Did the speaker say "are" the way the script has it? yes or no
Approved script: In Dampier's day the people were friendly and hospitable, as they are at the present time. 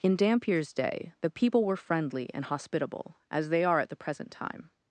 yes